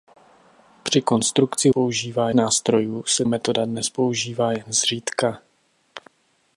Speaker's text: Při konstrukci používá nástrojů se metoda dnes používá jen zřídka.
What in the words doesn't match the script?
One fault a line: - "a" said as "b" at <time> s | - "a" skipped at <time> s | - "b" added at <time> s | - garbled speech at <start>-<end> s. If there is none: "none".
none